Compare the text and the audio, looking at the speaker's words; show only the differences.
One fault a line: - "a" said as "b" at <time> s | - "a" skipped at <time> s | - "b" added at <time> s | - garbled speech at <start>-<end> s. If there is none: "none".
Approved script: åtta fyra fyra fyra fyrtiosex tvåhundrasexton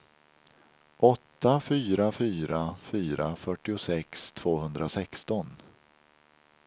none